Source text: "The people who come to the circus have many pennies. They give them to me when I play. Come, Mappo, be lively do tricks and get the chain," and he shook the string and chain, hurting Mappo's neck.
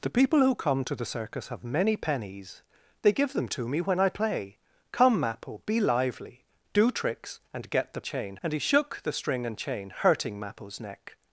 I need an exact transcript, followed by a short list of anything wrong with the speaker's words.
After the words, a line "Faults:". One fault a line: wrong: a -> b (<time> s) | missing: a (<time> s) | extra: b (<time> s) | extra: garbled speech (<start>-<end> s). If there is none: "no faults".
"The people who come to the circus have many pennies. They give them to me when I play. Come, Mappo, be lively do tricks and get the chain," and he shook the string and chain, hurting Mappo's neck.
Faults:
no faults